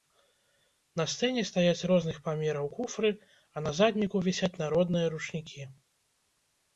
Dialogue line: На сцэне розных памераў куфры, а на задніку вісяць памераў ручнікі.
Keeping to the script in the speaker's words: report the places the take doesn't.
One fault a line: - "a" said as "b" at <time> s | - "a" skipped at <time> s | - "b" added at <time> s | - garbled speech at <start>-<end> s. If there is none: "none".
- "стаяць" added at 1.5 s
- "памераў" said as "народныя" at 4.6 s